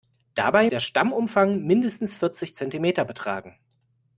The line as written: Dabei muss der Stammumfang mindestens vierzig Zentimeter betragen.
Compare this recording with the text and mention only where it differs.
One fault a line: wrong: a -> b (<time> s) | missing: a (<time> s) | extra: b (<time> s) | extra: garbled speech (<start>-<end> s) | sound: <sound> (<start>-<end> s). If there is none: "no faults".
missing: muss (0.7 s)